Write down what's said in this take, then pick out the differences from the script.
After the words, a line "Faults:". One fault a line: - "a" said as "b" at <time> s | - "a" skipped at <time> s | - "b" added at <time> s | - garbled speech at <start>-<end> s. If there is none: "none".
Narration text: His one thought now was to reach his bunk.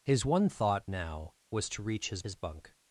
His one thought now was to reach his his bunk.
Faults:
- "his" added at 2.2 s